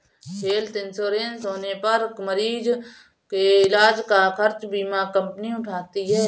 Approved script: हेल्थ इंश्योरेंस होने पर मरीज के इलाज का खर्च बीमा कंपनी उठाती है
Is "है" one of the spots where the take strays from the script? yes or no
no